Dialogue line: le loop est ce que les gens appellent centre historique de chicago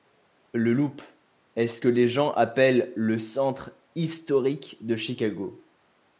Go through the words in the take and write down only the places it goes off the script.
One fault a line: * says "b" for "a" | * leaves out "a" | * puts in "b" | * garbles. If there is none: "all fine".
* puts in "le"